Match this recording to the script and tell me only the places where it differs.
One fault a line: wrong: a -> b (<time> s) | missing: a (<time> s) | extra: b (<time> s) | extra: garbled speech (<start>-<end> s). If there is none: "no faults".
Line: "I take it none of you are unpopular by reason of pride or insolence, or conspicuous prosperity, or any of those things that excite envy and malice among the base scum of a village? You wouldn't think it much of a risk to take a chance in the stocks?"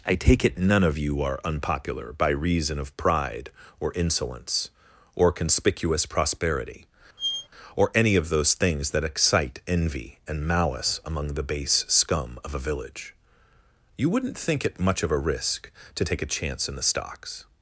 no faults